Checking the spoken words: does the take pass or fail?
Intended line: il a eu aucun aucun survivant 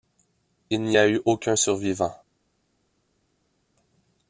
fail